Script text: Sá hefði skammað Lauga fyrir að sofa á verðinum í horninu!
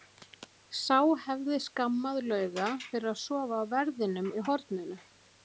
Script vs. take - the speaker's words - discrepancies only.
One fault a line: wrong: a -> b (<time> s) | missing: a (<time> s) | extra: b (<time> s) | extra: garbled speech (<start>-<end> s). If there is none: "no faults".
no faults